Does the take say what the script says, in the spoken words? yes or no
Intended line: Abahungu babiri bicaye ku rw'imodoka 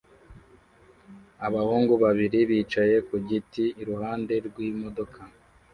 no